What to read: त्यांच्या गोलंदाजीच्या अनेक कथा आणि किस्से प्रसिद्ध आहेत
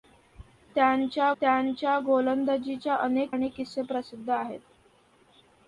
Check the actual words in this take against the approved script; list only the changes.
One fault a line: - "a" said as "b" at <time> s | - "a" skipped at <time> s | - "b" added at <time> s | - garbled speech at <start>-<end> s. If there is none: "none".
- "त्यांच्या" added at 1.4 s
- "कथा" skipped at 3.3 s